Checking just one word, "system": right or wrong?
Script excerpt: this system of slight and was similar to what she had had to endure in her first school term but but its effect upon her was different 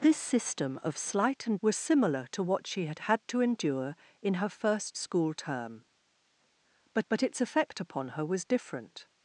right